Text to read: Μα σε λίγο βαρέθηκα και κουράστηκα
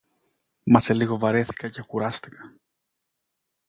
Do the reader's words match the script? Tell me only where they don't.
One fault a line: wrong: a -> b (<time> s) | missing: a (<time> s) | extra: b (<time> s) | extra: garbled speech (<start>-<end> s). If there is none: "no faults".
no faults